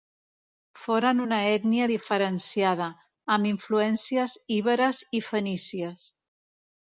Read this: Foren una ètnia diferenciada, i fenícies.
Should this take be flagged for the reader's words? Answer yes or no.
yes